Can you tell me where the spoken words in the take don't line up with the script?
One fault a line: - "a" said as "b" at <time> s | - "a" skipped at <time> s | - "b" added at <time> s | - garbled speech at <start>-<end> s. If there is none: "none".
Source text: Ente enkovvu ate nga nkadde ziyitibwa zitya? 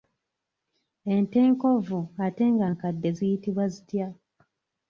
none